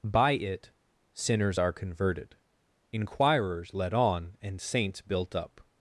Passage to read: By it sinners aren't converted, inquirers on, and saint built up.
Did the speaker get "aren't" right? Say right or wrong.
wrong